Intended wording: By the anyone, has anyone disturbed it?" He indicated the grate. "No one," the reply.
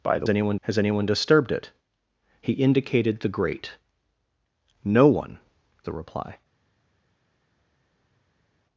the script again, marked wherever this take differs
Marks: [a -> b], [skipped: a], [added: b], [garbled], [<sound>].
By the anyone, has anyone disturbed it?" He indicated the grate. "No one," the reply.